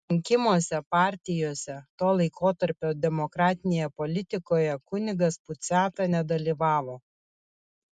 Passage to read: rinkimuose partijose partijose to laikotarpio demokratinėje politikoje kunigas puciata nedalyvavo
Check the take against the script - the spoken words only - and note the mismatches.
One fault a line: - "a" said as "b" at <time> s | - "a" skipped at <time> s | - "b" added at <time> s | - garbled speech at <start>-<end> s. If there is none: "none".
- "partijose" skipped at 1.8 s